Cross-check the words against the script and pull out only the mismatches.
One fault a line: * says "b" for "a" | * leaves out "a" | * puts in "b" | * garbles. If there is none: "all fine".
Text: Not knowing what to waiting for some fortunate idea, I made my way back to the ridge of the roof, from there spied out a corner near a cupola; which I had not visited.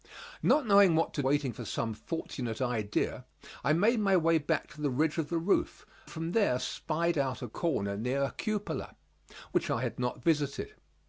all fine